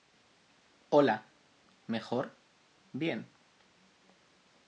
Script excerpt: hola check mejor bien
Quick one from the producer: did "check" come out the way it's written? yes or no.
no